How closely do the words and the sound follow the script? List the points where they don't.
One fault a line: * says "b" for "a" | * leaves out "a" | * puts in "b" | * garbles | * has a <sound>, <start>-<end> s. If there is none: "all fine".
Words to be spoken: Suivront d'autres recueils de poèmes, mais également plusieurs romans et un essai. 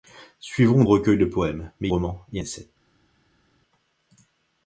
* leaves out "d'autres"
* leaves out "également plusieurs"
* leaves out "un"